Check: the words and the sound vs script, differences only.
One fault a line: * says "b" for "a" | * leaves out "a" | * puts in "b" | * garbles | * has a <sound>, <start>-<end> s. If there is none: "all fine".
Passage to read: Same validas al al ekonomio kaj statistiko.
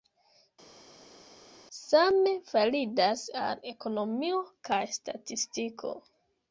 * leaves out "al"